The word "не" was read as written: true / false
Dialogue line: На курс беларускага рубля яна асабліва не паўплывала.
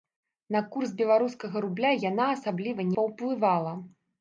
false